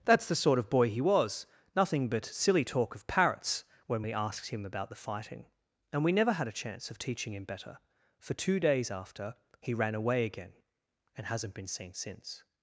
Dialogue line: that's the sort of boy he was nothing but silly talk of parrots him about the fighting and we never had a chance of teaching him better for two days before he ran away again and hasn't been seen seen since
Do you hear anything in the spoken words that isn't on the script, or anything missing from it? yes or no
yes